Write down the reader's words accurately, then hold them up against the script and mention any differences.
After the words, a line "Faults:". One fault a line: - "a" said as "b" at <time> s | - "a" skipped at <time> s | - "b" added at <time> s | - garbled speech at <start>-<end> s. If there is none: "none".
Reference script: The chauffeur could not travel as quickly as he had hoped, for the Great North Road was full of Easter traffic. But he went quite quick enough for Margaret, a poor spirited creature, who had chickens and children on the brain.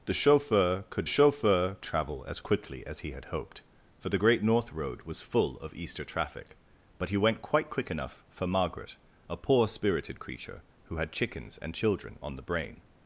The chauffeur could chauffeur travel as quickly as he had hoped, for the Great North Road was full of Easter traffic. But he went quite quick enough for Margaret, a poor spirited creature, who had chickens and children on the brain.
Faults:
- "not" said as "chauffeur" at 1.1 s